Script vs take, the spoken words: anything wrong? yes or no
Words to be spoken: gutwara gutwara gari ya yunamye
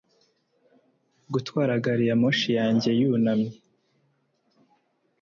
yes